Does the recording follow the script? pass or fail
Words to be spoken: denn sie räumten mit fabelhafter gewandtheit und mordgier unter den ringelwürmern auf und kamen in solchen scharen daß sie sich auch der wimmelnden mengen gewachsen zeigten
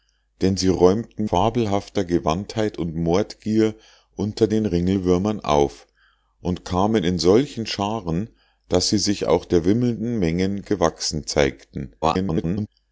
fail